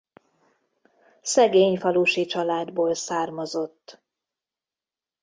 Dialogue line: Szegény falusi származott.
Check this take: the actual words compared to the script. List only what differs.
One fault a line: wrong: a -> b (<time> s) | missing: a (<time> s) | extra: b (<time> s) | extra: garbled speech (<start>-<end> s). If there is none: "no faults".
extra: családból (2.3 s)